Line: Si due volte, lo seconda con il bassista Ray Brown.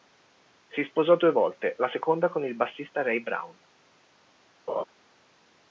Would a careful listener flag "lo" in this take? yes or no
yes